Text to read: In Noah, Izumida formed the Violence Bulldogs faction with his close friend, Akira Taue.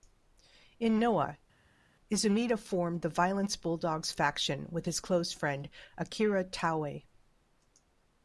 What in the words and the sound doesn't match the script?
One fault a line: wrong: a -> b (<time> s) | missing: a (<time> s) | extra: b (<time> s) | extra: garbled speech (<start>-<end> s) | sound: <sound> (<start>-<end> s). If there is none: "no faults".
no faults